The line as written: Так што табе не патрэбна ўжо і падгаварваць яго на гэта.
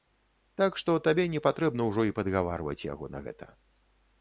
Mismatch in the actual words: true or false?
false